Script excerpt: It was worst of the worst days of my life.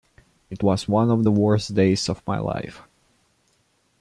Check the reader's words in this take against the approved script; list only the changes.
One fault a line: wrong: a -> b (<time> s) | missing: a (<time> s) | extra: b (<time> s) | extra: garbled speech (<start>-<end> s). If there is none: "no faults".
wrong: worst -> one (0.9 s)